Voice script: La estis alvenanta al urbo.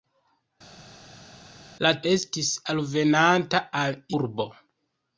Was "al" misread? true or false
false